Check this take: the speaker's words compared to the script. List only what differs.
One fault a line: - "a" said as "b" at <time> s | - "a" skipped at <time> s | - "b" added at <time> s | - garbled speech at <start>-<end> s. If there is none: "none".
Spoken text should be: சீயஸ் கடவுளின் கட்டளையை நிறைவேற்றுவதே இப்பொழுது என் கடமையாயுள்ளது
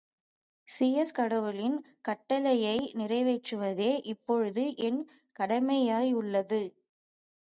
none